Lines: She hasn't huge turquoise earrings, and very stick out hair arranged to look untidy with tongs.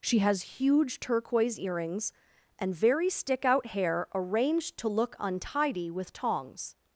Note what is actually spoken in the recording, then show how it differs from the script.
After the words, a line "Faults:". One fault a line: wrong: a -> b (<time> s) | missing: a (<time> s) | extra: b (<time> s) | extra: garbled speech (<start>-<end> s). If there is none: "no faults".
She has huge turquoise earrings, and very stick out hair arranged to look untidy with tongs.
Faults:
wrong: hasn't -> has (0.2 s)